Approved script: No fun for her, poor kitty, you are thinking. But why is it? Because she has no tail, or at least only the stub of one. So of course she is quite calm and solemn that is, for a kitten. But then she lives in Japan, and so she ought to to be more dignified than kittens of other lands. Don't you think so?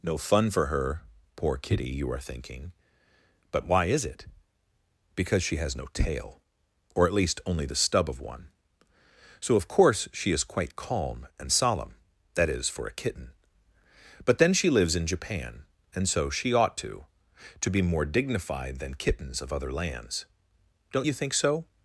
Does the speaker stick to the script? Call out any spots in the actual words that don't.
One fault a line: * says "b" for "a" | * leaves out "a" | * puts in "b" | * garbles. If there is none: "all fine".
all fine